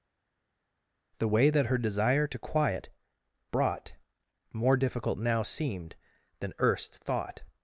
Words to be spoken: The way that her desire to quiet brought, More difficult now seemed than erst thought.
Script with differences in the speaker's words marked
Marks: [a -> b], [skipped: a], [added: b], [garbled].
The way that her desire to quiet brought, More difficult now seemed than erst thought.